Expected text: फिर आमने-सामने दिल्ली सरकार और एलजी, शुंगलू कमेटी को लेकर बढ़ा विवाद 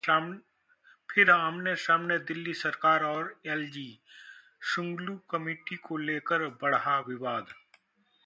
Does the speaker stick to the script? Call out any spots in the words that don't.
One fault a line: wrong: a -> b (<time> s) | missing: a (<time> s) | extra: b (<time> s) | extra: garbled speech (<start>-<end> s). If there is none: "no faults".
no faults